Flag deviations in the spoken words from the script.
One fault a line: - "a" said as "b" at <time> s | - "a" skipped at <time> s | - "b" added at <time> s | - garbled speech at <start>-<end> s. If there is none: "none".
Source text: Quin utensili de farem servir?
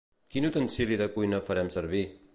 - "cuina" added at 1.2 s